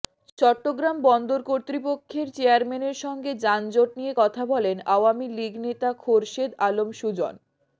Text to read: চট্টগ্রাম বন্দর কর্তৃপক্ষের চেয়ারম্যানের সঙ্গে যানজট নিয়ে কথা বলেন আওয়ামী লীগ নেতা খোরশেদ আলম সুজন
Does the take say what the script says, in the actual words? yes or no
yes